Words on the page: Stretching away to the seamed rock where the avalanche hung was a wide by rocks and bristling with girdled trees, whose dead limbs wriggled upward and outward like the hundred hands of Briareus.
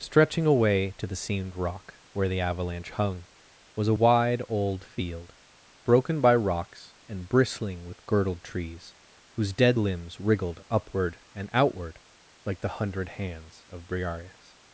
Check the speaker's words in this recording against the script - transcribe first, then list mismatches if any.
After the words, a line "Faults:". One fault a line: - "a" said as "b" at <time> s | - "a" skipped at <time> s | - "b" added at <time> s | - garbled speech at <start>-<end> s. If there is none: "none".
Stretching away to the seamed rock where the avalanche hung was a wide old field, broken by rocks and bristling with girdled trees, whose dead limbs wriggled upward and outward like the hundred hands of Briareus.
Faults:
- "old field broken" added at 4.5 s